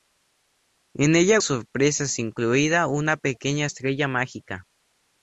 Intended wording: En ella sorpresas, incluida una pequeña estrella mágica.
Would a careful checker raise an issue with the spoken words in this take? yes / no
no